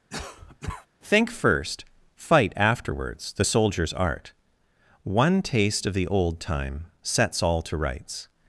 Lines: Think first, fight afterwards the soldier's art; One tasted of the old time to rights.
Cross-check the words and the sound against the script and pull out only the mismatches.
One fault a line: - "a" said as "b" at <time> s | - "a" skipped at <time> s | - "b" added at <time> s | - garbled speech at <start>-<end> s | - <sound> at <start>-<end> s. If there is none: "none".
- cough at 0.1-0.9 s
- "tasted" said as "taste" at 5.4 s
- "sets all" added at 7.0 s